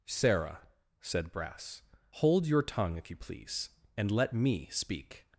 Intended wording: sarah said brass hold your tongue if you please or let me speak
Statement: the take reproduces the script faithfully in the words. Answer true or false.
false